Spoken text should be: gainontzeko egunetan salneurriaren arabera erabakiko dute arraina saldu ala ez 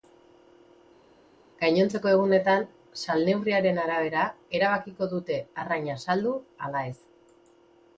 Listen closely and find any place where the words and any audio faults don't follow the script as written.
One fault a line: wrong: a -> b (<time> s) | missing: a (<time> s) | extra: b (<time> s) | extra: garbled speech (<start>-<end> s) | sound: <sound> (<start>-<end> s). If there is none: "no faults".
no faults